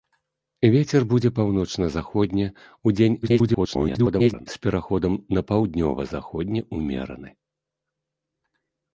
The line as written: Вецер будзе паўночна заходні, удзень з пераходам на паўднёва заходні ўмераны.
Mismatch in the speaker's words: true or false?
true